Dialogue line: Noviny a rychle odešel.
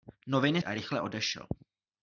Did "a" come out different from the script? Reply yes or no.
no